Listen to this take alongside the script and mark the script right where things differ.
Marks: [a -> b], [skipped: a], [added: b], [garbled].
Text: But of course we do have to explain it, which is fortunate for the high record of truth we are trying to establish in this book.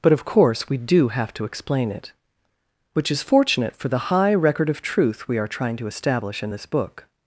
But of course we do have to explain it, which is fortunate for the high record of truth we are trying to establish in this book.